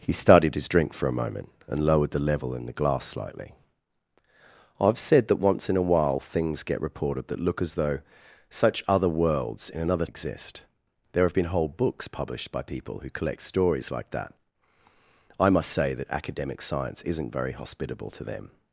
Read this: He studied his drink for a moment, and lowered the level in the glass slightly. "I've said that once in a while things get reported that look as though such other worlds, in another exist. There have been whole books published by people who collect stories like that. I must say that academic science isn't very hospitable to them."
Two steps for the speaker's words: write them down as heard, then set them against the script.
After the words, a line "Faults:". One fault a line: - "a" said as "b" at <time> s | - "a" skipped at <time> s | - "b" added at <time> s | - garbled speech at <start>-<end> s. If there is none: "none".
He studied his drink for a moment, and lowered the level in the glass slightly. "I've said that once in a while things get reported that look as though such other worlds, in another exist. There have been whole books published by people who collect stories like that. I must say that academic science isn't very hospitable to them."
Faults:
none